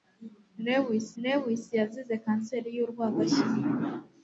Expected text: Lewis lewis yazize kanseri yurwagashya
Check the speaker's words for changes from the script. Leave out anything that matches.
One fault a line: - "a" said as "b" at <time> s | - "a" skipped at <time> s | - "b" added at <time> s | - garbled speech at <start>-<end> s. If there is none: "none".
none